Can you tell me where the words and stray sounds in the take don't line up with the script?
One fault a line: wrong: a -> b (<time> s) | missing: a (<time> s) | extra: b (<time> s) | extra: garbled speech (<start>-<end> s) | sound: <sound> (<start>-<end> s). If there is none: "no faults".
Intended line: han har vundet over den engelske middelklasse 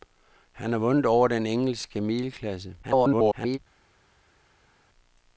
extra: garbled speech (2.8-3.6 s)